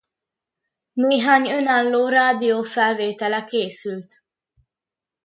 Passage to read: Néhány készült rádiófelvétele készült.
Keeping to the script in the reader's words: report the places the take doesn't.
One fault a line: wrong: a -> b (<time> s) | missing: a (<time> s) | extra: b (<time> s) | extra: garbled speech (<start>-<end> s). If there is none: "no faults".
wrong: készült -> önálló (1.5 s)